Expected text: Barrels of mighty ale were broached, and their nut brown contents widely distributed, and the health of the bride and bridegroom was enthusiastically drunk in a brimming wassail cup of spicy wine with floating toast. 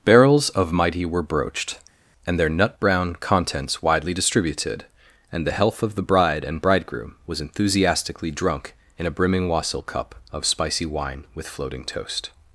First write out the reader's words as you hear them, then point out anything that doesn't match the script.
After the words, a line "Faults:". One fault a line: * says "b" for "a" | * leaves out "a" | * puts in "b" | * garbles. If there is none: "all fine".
Barrels of mighty were broached, and their nut brown contents widely distributed, and the health of the bride and bridegroom was enthusiastically drunk in a brimming wassail cup of spicy wine with floating toast.
Faults:
* leaves out "ale"